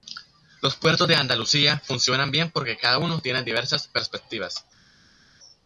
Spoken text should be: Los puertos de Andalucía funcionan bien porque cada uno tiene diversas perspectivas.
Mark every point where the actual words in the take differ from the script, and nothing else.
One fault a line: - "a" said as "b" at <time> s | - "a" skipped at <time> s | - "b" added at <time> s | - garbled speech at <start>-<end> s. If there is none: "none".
none